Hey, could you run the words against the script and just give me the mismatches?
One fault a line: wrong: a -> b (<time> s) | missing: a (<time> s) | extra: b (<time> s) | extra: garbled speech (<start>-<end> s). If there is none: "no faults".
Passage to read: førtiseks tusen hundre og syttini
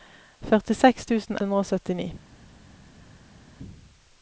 no faults